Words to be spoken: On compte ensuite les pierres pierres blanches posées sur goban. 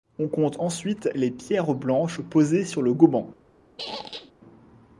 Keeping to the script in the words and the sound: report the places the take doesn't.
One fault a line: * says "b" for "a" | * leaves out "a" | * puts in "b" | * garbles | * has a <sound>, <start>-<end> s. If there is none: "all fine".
* leaves out "pierres"
* puts in "le"
* has a squeak, 3.8-4.3 s